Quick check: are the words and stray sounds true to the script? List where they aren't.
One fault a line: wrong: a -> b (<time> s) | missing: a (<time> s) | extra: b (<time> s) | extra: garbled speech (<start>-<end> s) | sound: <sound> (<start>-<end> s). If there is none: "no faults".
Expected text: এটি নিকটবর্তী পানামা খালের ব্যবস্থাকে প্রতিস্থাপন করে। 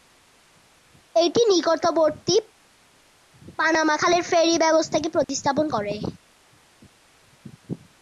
extra: ফেরি (4.3 s)
sound: dropout (5.2-5.3 s)